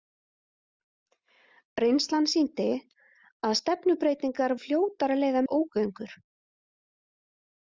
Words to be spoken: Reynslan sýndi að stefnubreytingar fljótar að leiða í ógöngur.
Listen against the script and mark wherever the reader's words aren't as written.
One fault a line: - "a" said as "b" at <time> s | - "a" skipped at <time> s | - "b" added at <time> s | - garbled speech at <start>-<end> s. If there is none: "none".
none